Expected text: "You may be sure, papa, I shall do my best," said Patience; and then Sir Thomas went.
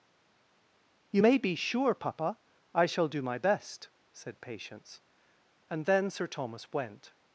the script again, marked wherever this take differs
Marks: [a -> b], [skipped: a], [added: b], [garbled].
"You may be sure, papa, I shall do my best," said Patience; and then Sir Thomas went.